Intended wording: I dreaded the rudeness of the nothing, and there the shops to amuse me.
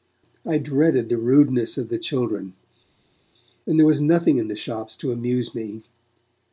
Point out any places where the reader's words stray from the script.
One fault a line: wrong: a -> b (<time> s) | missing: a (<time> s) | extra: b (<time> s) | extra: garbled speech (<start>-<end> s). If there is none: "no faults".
wrong: nothing -> children (2.0 s)
extra: was nothing in (3.9 s)